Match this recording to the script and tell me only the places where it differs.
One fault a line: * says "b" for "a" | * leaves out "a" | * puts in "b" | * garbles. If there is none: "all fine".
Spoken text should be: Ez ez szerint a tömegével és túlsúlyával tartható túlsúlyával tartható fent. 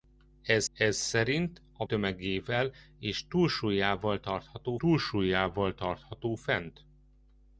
all fine